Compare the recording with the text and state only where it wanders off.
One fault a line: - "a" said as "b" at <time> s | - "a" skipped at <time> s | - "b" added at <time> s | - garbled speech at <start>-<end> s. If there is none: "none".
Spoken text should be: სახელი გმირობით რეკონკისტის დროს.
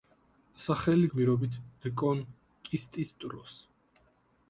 none